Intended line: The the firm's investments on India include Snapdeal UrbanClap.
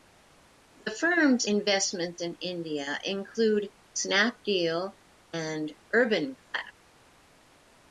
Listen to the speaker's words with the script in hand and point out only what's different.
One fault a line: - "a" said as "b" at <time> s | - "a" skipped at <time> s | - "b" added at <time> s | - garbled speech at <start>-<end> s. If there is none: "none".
- "the" skipped at 0.9 s
- "on" said as "in" at 2.2 s
- "and" added at 5.3 s